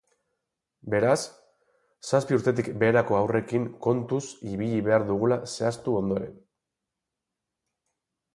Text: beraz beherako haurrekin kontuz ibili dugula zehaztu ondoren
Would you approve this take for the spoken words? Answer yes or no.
no